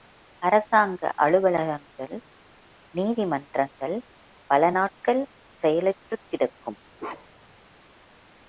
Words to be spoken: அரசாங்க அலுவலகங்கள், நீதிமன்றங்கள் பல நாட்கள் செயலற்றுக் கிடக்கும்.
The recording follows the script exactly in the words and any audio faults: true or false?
false